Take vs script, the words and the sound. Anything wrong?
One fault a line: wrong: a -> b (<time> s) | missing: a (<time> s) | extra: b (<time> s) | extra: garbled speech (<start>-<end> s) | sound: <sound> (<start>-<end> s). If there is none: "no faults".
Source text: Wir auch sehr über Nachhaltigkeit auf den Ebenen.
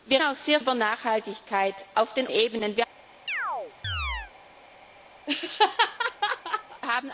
sound: chirp (3.3-4.3 s)
sound: laugh (5.3-6.8 s)